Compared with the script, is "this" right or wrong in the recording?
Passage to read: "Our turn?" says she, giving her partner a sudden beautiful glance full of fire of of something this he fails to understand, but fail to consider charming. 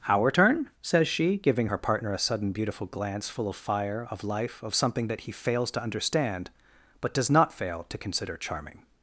wrong